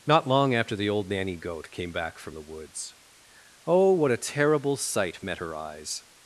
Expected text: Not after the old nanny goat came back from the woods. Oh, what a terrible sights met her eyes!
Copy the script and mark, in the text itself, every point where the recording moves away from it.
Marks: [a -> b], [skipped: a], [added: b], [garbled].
Not [added: long] after the old nanny goat came back from the woods. Oh, what a terrible [sights -> sight] met her eyes!